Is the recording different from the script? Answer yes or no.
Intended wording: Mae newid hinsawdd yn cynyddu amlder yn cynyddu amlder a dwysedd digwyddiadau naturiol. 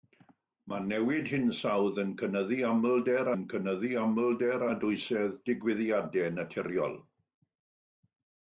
no